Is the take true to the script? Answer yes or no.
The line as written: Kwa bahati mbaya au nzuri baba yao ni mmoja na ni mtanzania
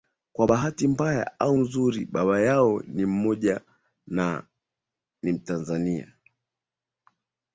yes